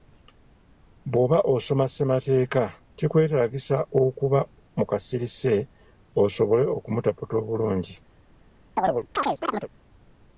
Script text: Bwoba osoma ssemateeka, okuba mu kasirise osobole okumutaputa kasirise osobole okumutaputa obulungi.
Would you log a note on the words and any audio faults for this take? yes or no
yes